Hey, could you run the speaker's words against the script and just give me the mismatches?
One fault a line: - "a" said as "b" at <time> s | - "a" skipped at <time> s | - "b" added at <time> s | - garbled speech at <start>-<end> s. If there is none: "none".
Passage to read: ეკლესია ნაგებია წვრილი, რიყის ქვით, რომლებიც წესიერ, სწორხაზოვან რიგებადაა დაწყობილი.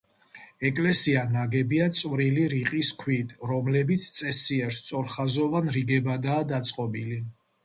none